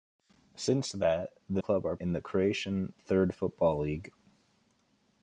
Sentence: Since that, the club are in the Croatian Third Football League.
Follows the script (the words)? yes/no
yes